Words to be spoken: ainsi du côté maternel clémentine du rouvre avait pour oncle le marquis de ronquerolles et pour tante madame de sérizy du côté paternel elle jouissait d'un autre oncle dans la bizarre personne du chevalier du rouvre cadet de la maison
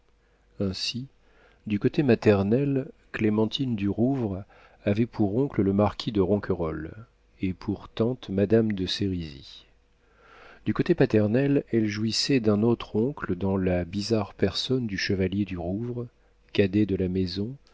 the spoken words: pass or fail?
pass